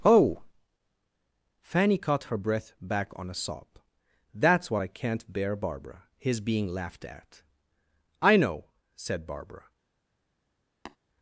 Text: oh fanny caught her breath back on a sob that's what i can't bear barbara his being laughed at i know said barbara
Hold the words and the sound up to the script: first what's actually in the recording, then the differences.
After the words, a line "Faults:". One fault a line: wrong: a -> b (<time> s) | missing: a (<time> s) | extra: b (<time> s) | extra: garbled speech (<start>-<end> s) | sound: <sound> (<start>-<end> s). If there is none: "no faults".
oh fanny caught her breath back on a sob that's what i can't bear barbara his being laughed at i know said barbara
Faults:
sound: tap (10.9-11.0 s)